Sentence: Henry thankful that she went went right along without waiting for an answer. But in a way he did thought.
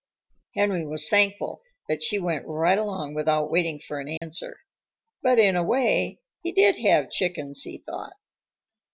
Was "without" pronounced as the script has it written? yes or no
yes